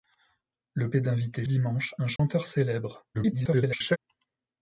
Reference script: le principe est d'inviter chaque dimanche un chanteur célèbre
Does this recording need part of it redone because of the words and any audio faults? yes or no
yes